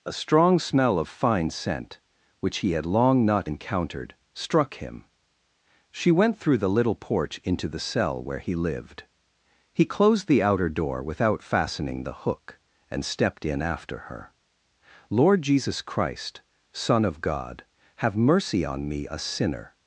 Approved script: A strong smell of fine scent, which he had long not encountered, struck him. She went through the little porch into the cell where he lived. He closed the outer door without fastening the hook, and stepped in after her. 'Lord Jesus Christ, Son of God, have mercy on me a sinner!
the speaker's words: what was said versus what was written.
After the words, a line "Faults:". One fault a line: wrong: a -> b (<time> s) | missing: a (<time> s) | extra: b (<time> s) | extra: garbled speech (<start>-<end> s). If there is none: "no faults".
A strong smell of fine scent, which he had long not encountered, struck him. She went through the little porch into the cell where he lived. He closed the outer door without fastening the hook, and stepped in after her. 'Lord Jesus Christ, Son of God, have mercy on me a sinner!
Faults:
no faults